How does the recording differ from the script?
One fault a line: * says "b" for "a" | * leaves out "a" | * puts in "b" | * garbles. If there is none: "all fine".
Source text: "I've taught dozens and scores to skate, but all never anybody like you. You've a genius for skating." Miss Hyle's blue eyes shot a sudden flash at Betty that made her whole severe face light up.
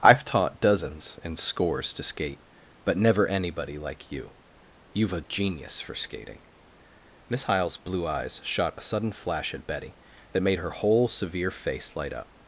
* leaves out "all"